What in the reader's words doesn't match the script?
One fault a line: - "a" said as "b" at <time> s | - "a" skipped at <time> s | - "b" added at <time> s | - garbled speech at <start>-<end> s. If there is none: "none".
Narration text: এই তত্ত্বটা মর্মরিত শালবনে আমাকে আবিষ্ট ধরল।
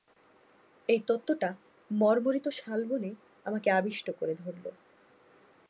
- "করে" added at 4.1 s